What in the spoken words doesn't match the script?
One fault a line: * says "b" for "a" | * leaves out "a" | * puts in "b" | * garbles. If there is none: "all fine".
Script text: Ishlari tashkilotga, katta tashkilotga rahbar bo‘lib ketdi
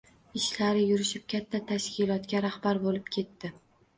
* says "yurishib" for "tashkilotga"